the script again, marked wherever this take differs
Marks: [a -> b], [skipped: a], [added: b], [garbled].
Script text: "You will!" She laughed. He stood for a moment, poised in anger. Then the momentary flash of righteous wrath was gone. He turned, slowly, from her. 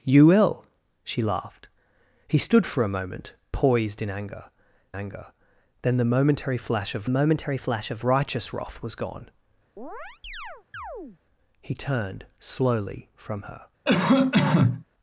"You will!" She laughed. He stood for a moment, poised in anger. [added: anger] Then the momentary flash of [added: momentary flash of] righteous wrath was gone. He turned, slowly, from her.